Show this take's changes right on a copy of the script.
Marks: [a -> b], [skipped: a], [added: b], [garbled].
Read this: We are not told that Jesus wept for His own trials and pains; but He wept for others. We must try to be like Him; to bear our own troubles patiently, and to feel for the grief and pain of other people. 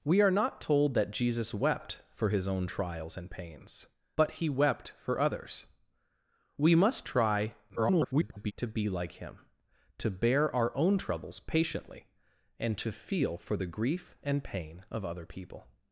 We are not told that Jesus wept for His own trials and pains; but He wept for others. We must try [garbled] to be like Him; to bear our own troubles patiently, and to feel for the grief and pain of other people.